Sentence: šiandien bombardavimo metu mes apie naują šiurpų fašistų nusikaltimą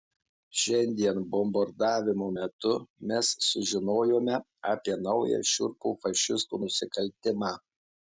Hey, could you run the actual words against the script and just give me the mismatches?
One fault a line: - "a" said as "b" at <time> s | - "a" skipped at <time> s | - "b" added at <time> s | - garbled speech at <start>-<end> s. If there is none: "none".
- "sužinojome" added at 3.5 s